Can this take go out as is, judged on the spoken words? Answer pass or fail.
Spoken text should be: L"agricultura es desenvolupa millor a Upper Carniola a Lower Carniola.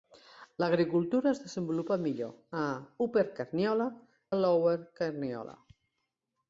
pass